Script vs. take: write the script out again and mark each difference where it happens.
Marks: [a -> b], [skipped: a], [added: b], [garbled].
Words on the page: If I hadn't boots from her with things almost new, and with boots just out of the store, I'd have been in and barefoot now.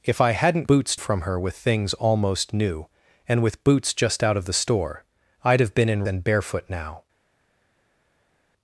If I hadn't boots from her with things almost new, and with boots just out of the store, I'd have been in and barefoot now.